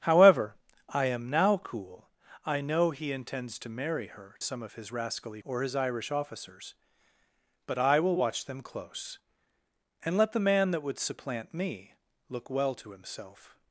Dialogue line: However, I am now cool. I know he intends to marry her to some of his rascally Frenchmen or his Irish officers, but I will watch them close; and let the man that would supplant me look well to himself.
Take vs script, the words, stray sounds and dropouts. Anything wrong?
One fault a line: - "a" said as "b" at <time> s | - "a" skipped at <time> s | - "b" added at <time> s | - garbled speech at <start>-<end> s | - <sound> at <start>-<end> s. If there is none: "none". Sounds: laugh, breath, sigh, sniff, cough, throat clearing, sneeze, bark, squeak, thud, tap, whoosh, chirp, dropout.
- "to" skipped at 4.3 s
- "Frenchmen" skipped at 5.4 s